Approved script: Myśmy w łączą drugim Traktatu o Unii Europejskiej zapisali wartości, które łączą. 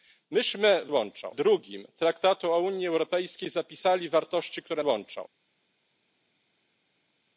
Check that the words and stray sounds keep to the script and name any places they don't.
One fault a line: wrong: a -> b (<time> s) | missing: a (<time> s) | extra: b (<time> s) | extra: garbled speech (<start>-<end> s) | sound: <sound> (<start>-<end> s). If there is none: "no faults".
no faults